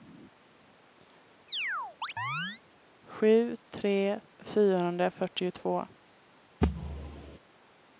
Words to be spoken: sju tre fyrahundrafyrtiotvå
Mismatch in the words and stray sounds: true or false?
true